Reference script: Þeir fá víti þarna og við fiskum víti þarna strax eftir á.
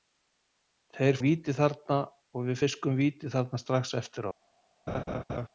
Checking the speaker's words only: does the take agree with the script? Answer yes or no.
no